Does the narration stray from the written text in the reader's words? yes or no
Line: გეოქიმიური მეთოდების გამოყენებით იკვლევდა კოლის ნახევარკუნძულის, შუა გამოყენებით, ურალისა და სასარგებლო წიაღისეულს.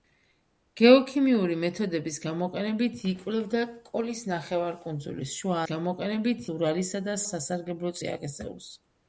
no